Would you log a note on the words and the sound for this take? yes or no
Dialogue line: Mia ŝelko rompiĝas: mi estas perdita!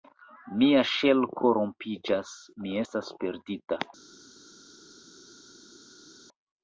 no